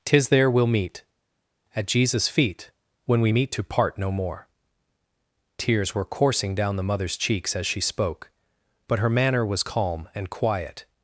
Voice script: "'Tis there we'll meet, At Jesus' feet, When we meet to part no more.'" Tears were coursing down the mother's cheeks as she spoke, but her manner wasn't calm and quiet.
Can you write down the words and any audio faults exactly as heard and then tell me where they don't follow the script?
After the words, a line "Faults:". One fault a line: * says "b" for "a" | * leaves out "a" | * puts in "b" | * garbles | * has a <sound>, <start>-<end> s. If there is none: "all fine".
"'Tis there we'll meet, At Jesus' feet, When we meet to part no more.'" Tears were coursing down the mother's cheeks as she spoke, but her manner was calm and quiet.
Faults:
* says "was" for "wasn't"